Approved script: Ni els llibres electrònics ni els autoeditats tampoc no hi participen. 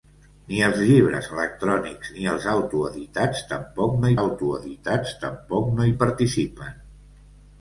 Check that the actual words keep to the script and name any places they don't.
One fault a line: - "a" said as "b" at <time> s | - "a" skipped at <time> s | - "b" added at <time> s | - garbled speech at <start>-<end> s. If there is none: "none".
- "autoeditats tampoc no" added at 4.2 s